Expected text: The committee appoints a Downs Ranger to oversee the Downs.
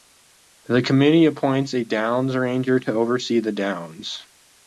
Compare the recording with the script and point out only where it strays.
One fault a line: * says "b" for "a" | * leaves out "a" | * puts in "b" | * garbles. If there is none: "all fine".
all fine